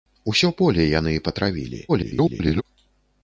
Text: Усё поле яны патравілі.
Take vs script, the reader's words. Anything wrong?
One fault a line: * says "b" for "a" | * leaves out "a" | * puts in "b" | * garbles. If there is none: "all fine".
* garbles